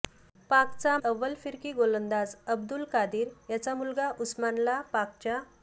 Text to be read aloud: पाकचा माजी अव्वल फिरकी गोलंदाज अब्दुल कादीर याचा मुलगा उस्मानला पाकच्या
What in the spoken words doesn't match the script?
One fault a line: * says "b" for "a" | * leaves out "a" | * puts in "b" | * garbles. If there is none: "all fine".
* leaves out "माजी"